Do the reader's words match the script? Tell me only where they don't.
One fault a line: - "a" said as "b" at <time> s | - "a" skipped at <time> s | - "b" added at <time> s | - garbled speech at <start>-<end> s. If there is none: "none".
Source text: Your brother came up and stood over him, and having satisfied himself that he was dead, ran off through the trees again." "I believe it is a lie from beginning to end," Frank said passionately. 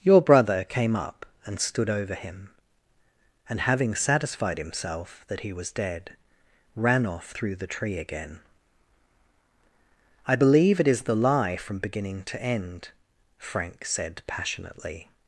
- "trees" said as "tree" at 7.7 s
- "a" said as "the" at 11.0 s